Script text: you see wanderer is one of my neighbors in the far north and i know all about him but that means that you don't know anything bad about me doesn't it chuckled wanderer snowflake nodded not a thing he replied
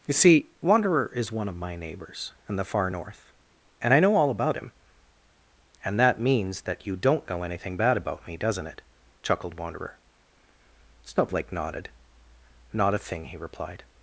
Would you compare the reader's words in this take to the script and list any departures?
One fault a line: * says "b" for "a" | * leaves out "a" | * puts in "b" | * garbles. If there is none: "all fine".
* says "and" for "but"